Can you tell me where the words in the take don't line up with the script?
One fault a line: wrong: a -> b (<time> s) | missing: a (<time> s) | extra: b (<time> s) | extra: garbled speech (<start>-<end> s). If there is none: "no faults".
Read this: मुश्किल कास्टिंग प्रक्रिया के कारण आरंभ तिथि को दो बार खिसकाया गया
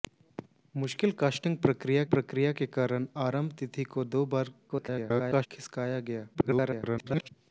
extra: प्रक्रिया (2.1 s)
extra: garbled speech (4.7-5.5 s)
extra: garbled speech (6.3-7.3 s)